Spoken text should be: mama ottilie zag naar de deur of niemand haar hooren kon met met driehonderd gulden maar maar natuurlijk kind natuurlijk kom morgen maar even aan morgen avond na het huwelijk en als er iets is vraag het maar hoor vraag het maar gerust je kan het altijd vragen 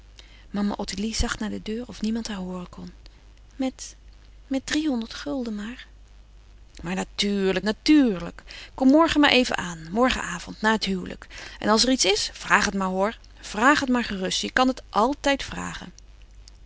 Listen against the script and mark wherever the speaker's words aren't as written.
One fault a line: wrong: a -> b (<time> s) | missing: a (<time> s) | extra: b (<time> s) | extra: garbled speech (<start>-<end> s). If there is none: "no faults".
missing: kind (7.7 s)